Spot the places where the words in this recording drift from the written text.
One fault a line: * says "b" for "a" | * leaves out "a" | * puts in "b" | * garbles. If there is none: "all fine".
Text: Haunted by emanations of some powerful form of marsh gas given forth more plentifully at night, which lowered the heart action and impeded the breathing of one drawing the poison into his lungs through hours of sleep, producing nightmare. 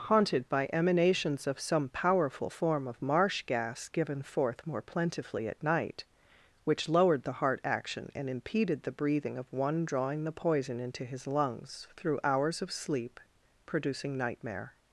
all fine